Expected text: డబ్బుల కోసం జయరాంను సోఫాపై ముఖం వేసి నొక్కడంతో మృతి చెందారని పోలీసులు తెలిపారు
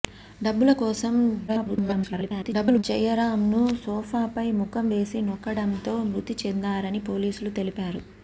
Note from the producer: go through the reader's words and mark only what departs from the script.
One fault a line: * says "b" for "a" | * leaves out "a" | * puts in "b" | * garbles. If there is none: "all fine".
* garbles